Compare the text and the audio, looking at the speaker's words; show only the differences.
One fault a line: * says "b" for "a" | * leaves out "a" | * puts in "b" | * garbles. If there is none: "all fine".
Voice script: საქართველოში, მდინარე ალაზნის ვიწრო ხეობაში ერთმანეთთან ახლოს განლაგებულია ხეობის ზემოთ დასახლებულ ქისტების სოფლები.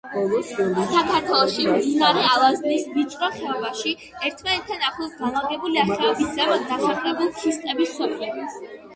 all fine